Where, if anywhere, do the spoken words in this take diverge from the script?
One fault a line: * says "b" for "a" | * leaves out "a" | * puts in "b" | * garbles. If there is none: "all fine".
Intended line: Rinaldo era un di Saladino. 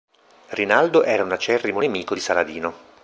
* puts in "acerrimo nemico"